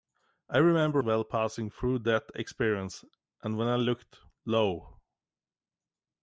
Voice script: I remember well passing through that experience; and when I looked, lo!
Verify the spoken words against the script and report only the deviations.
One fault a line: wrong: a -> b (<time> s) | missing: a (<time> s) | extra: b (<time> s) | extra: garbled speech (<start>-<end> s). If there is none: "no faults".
no faults